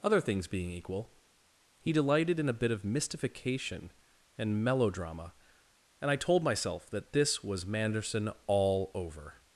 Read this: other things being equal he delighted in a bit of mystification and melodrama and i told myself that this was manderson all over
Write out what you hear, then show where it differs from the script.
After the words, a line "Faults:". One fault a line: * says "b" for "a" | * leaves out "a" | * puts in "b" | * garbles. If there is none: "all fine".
other things being equal he delighted in a bit of mystification and melodrama and i told myself that this was manderson all over
Faults:
all fine